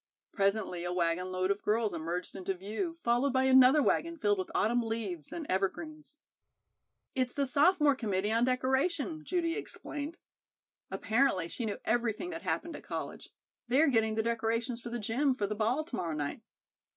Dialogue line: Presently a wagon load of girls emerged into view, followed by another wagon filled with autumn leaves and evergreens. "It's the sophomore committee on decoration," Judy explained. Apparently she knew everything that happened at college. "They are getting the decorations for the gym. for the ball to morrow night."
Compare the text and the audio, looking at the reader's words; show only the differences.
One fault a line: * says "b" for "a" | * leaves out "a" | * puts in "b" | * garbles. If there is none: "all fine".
all fine